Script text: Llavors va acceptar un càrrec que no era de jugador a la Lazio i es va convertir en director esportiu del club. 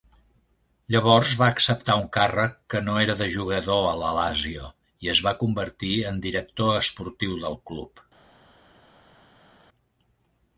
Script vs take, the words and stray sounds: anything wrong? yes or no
no